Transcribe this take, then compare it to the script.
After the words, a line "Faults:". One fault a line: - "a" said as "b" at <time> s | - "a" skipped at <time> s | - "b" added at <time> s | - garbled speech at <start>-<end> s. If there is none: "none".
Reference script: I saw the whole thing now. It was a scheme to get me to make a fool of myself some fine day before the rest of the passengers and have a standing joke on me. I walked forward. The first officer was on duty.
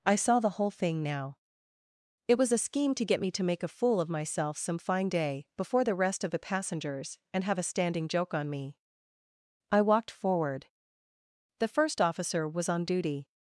I saw the whole thing now. It was a scheme to get me to make a fool of myself some fine day before the rest of the passengers and have a standing joke on me. I walked forward. The first officer was on duty.
Faults:
none